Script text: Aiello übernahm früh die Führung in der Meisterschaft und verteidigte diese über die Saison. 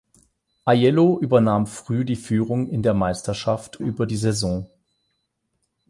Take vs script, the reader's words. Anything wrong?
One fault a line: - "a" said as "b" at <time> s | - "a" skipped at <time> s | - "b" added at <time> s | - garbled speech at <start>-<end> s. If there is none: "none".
- "und verteidigte diese" skipped at 3.8 s